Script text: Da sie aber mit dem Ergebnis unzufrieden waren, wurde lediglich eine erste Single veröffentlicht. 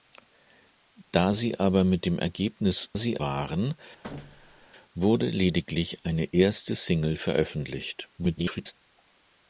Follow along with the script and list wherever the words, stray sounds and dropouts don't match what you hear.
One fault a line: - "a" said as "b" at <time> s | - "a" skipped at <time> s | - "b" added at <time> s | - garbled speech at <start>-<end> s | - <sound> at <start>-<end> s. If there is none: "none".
- "unzufrieden" said as "sie" at 2.9 s
- thud at 4.0-4.7 s
- garbled speech at 8.2-8.7 s